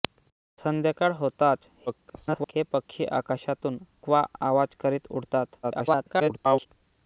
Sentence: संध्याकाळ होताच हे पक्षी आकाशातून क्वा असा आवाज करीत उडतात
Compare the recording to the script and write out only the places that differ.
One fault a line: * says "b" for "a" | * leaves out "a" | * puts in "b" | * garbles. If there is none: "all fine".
* garbles
* leaves out "असा"
* garbles